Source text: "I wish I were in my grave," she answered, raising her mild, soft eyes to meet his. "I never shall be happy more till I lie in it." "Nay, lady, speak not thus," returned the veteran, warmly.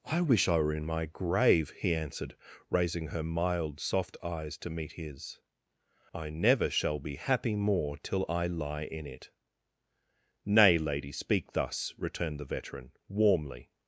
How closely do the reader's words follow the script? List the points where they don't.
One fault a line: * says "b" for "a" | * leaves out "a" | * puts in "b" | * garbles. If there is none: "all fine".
* says "he" for "she"
* leaves out "not"